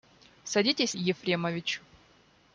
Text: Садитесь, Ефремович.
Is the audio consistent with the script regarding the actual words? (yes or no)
yes